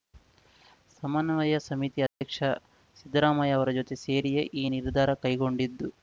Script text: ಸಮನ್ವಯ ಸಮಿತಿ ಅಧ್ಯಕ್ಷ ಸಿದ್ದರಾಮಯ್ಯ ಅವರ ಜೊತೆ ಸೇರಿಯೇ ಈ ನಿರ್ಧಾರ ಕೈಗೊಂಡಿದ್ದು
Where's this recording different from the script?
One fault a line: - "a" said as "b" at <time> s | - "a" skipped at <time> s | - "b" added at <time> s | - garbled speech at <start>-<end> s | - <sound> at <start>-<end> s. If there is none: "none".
- dropout at 2.1-2.2 s